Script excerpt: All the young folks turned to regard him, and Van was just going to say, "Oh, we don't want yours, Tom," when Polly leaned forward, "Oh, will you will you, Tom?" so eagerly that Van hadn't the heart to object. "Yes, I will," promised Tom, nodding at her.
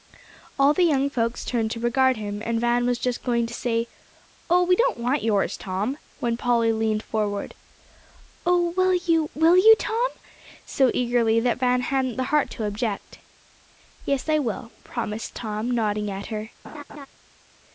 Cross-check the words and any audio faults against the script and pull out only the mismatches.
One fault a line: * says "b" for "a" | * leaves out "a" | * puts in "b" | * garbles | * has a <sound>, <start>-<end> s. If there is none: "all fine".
* has a laugh, 16.6-17.1 s